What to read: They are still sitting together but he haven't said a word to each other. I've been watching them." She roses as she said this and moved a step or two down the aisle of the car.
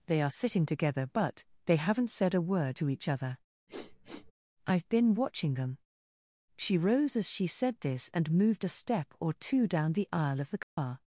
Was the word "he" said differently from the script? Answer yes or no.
yes